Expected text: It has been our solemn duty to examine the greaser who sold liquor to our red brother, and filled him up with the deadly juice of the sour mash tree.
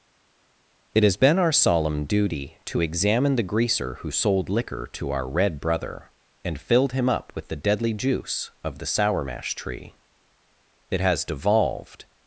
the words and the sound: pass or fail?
fail